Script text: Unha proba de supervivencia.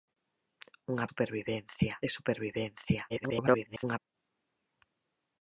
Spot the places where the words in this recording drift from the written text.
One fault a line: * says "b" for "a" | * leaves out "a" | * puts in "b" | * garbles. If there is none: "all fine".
* says "supervivencia" for "proba"
* garbles